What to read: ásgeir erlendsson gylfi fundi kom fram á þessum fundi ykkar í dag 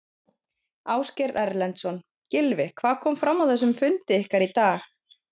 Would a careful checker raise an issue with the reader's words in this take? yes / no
yes